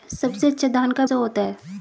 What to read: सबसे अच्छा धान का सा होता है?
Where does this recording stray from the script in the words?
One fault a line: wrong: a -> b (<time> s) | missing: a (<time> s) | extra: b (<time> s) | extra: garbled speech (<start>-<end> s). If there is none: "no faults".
no faults